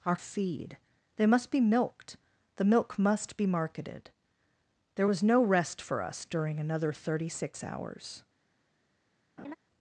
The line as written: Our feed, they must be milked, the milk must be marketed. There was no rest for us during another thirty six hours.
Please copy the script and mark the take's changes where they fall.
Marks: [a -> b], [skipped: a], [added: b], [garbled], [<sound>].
Our feed, they must be milked, the milk must be marketed. There was no rest for us during another thirty six hours. [laugh]